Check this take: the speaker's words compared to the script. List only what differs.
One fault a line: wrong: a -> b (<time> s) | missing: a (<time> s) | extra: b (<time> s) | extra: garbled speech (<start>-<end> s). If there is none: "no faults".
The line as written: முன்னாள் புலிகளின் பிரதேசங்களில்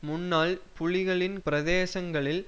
no faults